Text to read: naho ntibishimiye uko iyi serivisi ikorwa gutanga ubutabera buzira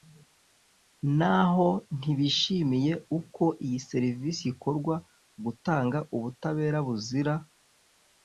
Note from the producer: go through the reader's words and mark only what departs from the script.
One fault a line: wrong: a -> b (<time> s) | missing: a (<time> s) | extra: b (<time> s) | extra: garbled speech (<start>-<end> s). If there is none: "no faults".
no faults